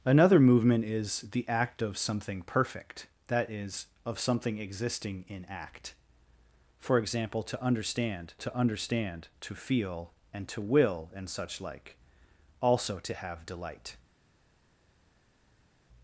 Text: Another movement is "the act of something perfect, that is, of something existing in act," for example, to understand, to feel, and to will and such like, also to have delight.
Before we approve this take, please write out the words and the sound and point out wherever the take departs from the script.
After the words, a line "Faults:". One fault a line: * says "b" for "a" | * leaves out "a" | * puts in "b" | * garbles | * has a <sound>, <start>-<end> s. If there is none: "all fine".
Another movement is "the act of something perfect, that is, of something existing in act," for example, to understand to understand, to feel, and to will and such like, also to have delight.
Faults:
* puts in "understand to"